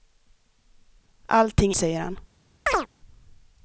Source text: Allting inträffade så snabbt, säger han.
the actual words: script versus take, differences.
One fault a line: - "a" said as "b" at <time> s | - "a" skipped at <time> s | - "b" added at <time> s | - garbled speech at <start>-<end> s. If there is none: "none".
- "inträffade så snabbt" skipped at 1.7 s